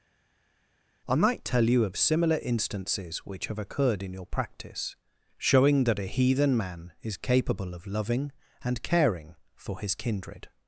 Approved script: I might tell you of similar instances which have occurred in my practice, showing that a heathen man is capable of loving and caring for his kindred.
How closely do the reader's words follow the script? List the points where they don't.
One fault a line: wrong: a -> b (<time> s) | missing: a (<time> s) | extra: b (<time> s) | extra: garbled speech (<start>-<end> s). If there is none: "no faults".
wrong: my -> your (4.1 s)